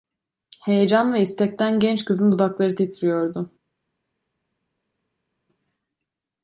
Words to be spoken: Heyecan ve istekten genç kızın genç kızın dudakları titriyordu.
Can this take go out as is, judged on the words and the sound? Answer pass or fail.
fail